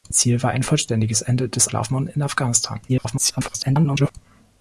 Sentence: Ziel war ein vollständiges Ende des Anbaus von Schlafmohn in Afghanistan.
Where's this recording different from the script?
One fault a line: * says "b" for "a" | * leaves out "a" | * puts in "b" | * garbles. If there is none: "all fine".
* leaves out "Anbaus von"
* garbles